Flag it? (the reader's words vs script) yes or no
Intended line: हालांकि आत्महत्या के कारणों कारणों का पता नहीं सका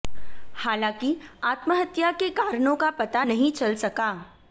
yes